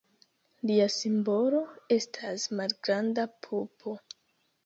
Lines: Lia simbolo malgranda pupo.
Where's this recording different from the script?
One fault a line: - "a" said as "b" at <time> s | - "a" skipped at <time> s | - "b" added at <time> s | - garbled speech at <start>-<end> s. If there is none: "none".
- "estas" added at 2.0 s